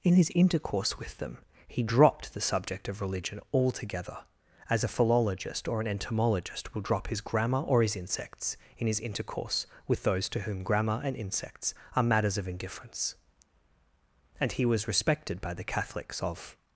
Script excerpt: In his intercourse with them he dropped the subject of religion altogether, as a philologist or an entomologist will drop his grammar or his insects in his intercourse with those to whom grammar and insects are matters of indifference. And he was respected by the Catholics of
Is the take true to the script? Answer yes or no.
yes